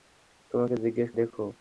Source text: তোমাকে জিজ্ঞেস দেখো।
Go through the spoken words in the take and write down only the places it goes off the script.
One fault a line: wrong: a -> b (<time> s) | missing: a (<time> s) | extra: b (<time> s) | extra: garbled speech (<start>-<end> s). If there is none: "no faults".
no faults